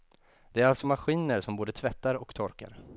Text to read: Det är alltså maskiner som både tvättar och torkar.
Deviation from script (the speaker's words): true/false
false